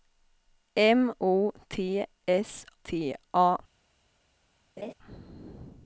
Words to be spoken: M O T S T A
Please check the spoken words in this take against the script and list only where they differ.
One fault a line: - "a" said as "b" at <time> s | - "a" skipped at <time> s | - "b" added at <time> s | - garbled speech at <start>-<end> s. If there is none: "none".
none